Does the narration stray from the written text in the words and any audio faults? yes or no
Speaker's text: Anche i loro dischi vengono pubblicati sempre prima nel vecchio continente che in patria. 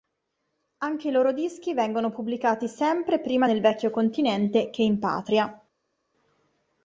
no